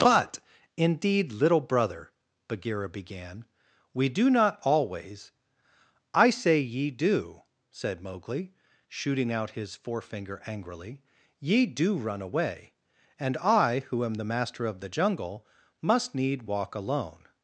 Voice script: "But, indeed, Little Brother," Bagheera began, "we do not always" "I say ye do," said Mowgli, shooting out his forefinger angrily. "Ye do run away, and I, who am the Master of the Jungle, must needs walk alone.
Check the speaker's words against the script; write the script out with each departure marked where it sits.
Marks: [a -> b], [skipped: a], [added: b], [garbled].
"But, indeed, Little Brother," Bagheera began, "we do not always" "I say ye do," said Mowgli, shooting out his forefinger angrily. "Ye do run away, and I, who am the Master of the Jungle, must [needs -> need] walk alone.